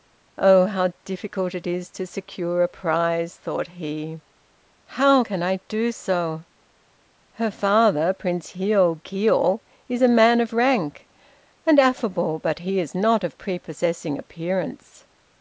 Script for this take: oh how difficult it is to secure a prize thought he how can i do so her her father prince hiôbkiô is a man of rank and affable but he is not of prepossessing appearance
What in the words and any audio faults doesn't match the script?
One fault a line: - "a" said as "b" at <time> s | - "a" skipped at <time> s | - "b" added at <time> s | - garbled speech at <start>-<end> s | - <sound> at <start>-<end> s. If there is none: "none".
- "her" skipped at 7.5 s